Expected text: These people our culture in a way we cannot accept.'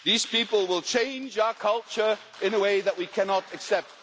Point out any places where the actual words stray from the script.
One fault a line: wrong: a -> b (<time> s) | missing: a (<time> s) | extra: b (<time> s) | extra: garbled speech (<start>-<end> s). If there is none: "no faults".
extra: will change (0.7 s)
extra: that (2.8 s)